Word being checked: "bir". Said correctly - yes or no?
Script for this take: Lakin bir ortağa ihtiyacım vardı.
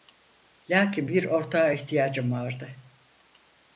yes